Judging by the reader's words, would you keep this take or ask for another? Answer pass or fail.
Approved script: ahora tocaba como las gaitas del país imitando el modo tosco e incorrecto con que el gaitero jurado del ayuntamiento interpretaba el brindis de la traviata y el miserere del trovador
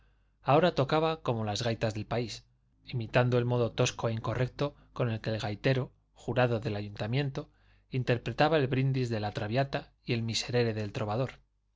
pass